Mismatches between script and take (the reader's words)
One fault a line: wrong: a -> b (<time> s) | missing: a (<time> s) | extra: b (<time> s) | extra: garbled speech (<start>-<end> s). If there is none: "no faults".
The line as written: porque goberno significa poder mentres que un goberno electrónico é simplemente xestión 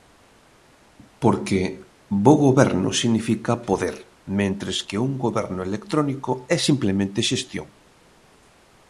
extra: bo (2.2 s)